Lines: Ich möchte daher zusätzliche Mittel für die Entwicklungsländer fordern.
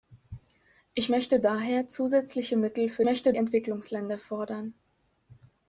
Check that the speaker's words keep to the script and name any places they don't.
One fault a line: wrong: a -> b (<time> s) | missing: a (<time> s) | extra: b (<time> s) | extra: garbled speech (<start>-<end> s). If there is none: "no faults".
wrong: die -> möchte (3.0 s)